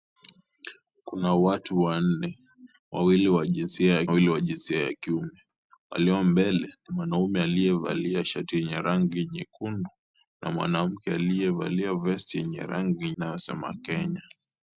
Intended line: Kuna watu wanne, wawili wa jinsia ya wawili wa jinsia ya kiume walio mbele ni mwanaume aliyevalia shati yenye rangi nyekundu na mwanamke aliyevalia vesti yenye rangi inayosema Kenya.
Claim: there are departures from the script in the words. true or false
false